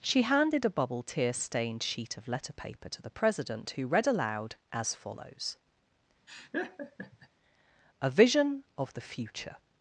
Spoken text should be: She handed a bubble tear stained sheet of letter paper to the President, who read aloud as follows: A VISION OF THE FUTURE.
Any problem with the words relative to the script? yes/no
no